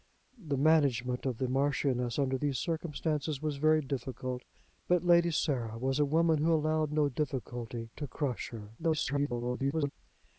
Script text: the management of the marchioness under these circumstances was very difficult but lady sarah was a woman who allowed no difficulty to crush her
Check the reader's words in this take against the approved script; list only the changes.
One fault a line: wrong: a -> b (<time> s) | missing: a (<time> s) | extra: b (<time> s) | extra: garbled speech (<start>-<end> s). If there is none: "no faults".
extra: garbled speech (8.8-9.9 s)